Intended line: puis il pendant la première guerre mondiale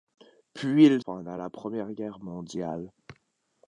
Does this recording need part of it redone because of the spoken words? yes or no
no